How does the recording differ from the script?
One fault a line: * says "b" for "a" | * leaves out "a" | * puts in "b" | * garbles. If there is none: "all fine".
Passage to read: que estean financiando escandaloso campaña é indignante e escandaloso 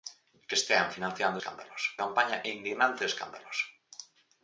all fine